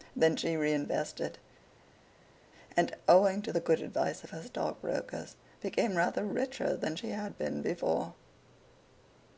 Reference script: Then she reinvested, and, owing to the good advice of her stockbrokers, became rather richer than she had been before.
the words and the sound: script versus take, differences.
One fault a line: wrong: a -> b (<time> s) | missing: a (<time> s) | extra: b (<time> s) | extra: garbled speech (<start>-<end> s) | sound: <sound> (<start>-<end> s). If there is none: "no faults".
no faults